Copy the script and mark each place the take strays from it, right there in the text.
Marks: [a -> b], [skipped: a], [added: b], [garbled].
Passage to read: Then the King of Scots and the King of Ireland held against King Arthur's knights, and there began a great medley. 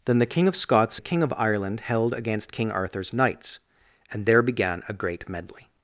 Then the King of Scots [skipped: and] the King of Ireland held against King Arthur's knights, and there began a great medley.